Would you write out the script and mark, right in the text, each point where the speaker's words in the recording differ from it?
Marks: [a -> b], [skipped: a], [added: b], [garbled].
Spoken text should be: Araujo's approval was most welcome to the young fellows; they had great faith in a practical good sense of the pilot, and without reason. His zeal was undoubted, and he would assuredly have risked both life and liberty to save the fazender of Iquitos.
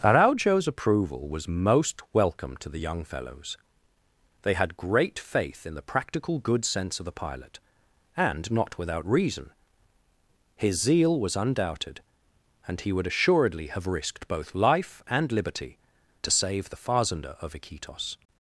Araujo's approval was most welcome to the young fellows; they had great faith in [a -> the] practical good sense of the pilot, and [added: not] without reason. His zeal was undoubted, and he would assuredly have risked both life and liberty to save the fazender of Iquitos.